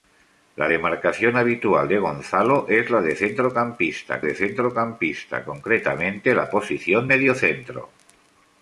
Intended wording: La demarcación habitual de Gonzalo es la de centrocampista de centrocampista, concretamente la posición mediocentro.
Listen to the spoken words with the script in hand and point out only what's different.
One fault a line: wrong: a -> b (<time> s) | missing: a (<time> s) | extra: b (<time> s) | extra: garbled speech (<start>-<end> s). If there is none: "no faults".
no faults